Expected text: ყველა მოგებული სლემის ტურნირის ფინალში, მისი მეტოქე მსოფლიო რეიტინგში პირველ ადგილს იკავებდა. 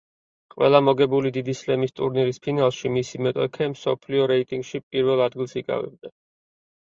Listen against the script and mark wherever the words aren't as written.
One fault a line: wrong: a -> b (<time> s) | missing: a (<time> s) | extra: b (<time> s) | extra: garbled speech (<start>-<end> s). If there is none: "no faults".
extra: დიდი (1.3 s)